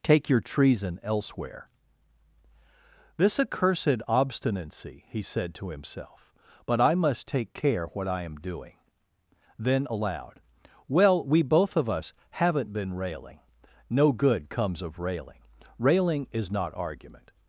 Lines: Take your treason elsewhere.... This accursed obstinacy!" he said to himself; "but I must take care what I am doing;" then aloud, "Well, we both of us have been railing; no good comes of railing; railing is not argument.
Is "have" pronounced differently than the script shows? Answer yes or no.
yes